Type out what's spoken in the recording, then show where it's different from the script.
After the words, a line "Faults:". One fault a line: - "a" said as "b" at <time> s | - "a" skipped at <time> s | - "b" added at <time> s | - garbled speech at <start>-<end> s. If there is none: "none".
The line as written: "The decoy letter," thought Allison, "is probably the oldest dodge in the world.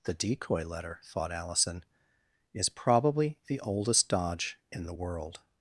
"The decoy letter," thought Allison, "is probably the oldest dodge in the world.
Faults:
none